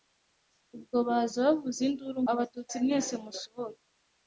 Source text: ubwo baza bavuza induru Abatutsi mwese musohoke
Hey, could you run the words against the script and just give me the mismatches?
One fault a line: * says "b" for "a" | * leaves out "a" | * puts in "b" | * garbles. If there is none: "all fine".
all fine